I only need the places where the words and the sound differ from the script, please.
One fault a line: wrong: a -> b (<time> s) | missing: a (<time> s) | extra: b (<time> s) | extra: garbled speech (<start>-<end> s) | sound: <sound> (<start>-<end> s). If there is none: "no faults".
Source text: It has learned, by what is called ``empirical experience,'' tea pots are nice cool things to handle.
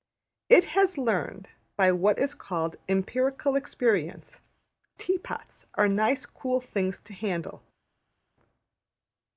no faults